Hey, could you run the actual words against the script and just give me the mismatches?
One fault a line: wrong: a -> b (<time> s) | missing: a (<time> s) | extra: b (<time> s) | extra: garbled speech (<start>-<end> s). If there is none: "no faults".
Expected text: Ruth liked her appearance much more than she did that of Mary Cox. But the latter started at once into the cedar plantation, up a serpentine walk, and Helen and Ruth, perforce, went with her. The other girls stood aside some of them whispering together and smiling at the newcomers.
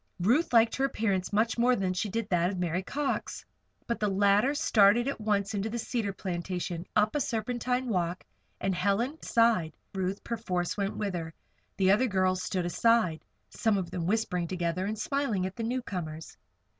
wrong: and -> aside (9.2 s)